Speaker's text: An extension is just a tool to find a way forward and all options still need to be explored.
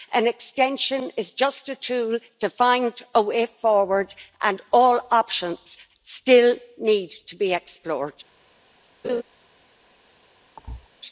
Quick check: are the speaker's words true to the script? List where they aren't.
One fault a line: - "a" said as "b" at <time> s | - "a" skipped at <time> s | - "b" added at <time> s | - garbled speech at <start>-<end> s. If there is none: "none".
none